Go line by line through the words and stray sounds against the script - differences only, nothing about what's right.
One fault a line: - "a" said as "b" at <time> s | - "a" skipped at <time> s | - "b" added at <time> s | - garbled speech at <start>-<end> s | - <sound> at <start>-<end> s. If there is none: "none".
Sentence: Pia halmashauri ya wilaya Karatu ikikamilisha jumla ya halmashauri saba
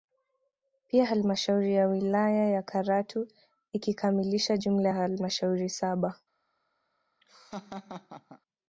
- "ya" added at 2.5 s
- laugh at 7.2-8.4 s